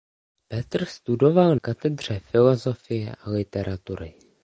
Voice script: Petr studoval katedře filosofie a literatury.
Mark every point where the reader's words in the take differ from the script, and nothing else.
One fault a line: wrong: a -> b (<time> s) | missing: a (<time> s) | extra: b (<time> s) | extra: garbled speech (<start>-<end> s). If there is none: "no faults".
no faults